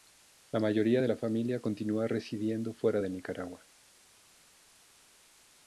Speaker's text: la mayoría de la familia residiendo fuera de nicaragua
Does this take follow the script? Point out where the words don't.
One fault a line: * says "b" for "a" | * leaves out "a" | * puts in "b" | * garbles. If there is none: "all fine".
* puts in "continúa"